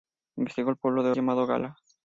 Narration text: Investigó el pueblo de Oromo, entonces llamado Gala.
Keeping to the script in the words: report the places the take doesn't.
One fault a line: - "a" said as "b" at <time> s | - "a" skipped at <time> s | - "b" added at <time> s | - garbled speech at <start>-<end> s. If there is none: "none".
- "Oromo entonces" skipped at 1.1 s